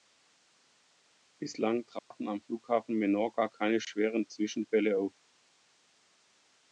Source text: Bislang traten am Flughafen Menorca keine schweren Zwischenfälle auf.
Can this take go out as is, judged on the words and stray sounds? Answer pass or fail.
fail